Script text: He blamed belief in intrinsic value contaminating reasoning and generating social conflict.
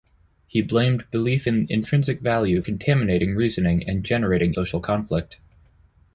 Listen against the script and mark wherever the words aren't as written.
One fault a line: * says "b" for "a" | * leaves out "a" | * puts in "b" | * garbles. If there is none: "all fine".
all fine